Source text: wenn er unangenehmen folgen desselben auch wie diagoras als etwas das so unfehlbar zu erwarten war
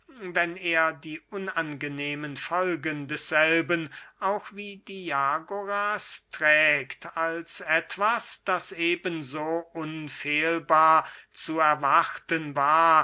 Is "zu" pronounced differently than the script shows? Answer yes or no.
no